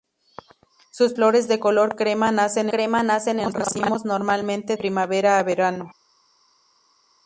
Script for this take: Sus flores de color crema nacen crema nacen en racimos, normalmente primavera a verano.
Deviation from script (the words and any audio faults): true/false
false